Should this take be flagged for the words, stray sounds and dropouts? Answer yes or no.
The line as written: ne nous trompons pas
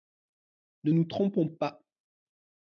no